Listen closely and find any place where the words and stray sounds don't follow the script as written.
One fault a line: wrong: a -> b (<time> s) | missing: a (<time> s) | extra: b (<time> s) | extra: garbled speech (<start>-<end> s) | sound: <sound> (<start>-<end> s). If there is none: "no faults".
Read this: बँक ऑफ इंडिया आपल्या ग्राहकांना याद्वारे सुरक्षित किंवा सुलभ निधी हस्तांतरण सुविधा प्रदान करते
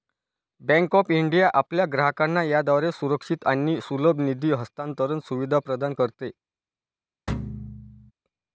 wrong: किंवा -> आणि (3.5 s)
sound: thud (7.3-8.1 s)